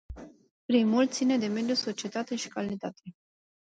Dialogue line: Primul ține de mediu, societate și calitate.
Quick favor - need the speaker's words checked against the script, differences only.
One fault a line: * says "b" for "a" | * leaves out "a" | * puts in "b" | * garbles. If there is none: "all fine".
all fine